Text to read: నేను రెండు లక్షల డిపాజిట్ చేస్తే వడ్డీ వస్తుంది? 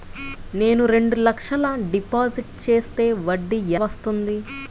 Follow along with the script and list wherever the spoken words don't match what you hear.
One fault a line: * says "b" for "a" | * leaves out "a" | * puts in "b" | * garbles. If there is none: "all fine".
all fine